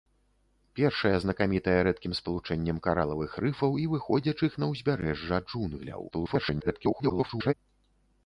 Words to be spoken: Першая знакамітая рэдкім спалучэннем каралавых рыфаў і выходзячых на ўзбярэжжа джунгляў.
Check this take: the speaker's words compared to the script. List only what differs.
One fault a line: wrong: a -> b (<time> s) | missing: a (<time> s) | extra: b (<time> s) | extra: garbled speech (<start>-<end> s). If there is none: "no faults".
extra: garbled speech (6.1-7.5 s)